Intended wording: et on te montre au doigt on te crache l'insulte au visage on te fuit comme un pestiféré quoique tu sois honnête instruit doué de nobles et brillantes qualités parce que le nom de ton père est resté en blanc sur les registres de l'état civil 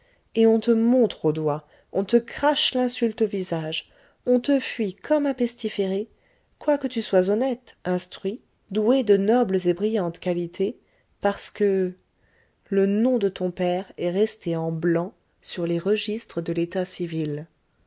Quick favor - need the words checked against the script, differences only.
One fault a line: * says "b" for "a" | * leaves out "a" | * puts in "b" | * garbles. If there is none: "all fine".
all fine